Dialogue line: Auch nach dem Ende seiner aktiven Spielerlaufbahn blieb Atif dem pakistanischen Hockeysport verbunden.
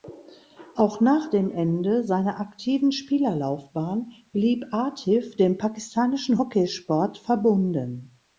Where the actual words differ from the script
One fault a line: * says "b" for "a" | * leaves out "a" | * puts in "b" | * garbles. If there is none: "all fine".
all fine